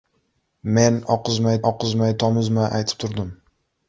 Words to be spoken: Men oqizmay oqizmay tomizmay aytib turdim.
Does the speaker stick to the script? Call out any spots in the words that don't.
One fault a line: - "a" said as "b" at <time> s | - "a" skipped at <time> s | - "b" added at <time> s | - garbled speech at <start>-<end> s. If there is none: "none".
none